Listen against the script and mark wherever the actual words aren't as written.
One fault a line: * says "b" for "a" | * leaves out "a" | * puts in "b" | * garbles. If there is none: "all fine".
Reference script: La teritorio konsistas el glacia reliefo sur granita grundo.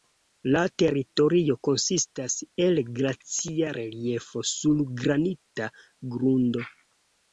all fine